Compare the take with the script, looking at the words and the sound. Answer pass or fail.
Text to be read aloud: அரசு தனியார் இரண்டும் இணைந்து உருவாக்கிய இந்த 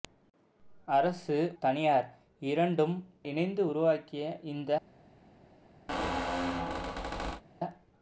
fail